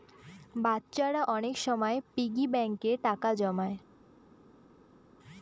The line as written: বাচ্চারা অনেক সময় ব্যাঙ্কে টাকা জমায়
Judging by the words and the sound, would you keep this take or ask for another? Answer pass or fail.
fail